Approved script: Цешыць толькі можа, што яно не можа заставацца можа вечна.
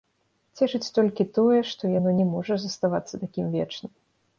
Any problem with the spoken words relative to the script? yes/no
yes